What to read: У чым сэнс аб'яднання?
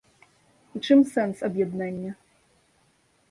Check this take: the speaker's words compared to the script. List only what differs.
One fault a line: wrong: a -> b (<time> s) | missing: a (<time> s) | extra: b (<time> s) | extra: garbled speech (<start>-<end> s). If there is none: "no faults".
no faults